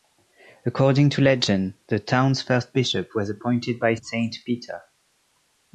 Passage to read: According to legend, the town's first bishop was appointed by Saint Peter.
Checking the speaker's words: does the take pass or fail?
pass